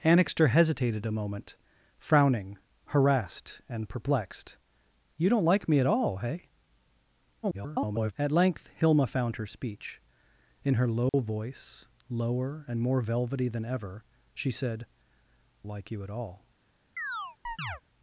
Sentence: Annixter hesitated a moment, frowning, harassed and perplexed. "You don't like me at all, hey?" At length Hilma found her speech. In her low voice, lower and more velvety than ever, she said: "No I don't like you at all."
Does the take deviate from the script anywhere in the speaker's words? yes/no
yes